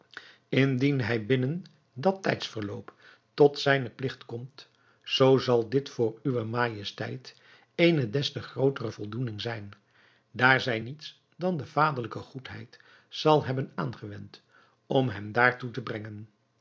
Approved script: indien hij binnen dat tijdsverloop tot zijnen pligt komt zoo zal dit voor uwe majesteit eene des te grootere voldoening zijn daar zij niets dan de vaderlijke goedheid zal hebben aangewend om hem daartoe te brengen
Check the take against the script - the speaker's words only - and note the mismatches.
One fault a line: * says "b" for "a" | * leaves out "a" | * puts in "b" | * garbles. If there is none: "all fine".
all fine